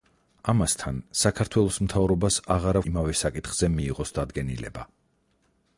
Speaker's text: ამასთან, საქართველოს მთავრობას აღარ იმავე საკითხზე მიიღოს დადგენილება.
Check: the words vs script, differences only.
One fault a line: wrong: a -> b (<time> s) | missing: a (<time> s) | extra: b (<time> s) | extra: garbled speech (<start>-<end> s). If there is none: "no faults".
no faults